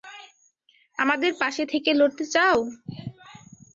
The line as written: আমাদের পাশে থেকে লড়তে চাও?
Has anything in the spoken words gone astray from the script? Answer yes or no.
no